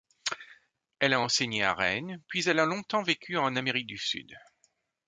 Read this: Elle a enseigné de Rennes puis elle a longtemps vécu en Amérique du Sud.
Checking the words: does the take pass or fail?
fail